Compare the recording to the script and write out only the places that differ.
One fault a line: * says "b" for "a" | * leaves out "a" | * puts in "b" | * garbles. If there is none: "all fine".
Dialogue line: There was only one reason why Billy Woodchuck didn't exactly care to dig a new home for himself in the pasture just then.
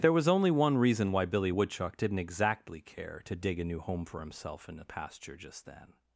all fine